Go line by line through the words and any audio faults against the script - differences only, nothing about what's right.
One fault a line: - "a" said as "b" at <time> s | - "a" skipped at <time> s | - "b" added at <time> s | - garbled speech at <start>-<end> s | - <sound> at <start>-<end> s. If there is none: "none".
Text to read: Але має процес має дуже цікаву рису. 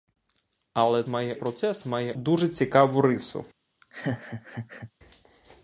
- laugh at 3.8-4.9 s